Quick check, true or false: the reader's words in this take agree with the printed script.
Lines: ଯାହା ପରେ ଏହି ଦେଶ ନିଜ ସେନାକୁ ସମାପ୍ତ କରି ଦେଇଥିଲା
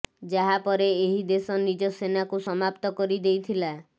true